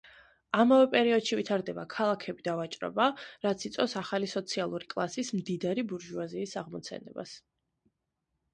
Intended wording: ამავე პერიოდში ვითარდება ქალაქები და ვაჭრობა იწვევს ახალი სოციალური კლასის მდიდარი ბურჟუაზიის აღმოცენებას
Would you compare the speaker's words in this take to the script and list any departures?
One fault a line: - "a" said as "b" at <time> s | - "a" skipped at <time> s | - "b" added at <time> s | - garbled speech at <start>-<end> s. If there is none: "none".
- "რაც" added at 3.5 s